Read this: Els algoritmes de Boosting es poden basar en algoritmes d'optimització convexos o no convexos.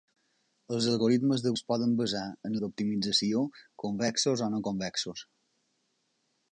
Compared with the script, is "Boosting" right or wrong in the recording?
wrong